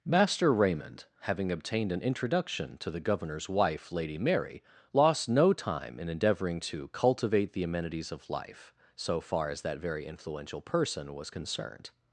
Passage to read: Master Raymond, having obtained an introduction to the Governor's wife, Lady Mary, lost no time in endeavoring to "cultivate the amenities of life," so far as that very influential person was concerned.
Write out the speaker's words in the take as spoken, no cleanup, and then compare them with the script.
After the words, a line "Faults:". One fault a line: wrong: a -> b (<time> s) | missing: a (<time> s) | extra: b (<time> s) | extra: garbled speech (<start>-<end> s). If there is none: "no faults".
Master Raymond, having obtained an introduction to the Governor's wife, Lady Mary, lost no time in endeavoring to "cultivate the amenities of life," so far as that very influential person was concerned.
Faults:
no faults